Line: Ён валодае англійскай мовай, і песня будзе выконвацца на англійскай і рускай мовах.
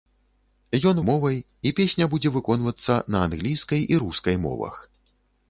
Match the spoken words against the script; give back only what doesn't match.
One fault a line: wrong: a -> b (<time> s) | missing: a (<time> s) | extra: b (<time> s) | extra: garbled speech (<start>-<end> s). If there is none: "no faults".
missing: валодае англійскай (1.0 s)